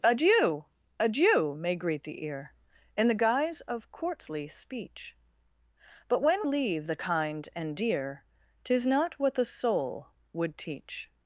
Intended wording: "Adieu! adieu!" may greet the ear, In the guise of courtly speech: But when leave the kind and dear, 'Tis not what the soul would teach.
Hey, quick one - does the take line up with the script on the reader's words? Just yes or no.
yes